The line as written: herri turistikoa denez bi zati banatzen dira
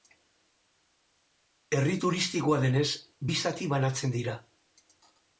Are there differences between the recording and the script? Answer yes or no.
no